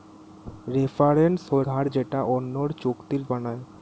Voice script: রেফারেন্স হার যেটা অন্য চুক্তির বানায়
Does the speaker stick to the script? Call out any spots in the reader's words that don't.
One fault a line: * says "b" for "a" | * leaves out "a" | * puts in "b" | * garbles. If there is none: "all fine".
all fine